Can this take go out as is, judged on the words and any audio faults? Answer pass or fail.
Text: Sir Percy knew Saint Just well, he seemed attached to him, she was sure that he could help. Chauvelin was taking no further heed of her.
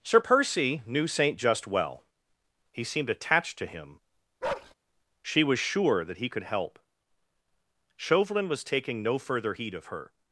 fail